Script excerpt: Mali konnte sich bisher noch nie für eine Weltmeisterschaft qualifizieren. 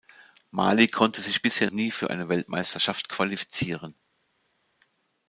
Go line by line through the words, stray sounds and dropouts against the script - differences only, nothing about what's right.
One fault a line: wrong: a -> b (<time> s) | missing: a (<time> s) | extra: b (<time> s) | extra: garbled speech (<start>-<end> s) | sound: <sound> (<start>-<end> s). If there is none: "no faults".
missing: noch (1.7 s)